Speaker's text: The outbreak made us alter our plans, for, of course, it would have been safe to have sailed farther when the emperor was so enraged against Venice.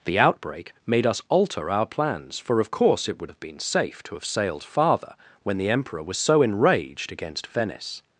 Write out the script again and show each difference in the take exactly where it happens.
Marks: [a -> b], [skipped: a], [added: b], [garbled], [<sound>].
The outbreak made us alter our plans, for, of course, it would have been safe to have sailed farther when the emperor was so enraged against Venice.